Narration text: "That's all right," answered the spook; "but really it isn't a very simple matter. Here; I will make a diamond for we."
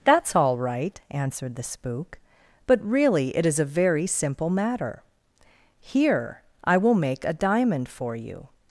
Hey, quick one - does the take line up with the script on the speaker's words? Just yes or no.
no